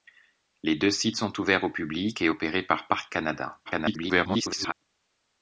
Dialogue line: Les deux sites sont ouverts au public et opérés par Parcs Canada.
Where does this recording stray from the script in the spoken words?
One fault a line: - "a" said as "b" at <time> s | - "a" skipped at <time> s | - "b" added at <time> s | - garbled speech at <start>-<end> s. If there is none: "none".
- garbled speech at 3.7-4.7 s